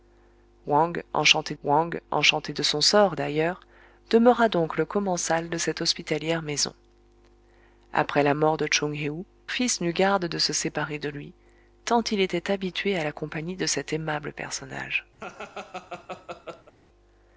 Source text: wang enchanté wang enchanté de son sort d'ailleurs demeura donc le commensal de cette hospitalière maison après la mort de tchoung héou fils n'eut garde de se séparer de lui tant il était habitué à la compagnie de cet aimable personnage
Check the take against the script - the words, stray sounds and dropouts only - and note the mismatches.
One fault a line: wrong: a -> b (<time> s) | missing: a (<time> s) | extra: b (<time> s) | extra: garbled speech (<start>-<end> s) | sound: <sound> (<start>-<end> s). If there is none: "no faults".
sound: laugh (15.2-16.7 s)